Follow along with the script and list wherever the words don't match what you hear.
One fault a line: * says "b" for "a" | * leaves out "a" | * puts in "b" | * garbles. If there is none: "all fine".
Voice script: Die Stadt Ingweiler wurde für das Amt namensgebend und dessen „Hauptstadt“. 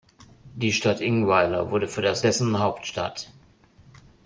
* leaves out "Amt namensgebend und"